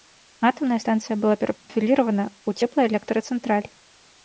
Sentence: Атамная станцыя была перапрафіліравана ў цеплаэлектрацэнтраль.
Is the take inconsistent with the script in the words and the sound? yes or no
yes